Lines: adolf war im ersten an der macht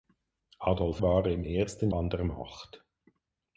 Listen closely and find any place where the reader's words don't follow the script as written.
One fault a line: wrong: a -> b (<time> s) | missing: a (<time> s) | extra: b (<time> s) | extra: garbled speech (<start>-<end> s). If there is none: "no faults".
no faults